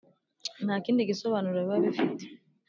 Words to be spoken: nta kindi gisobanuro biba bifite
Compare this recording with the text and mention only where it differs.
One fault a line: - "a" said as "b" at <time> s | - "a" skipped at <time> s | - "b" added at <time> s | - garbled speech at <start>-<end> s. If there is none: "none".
none